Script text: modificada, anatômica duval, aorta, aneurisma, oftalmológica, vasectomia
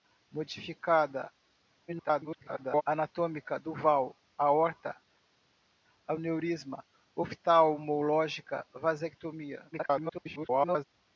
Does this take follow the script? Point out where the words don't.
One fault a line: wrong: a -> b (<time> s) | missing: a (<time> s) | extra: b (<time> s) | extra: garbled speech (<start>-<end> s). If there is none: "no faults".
extra: garbled speech (1.9-2.8 s)
extra: garbled speech (9.7-10.8 s)